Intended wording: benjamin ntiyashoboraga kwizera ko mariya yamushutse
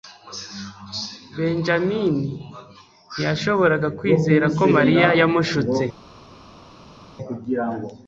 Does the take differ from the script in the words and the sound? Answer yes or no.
no